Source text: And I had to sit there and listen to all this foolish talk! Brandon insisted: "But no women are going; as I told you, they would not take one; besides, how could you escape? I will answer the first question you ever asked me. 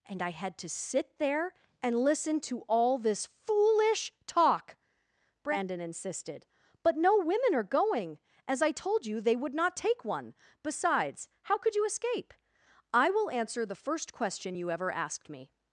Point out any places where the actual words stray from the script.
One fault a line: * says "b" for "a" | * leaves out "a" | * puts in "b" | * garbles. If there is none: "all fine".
all fine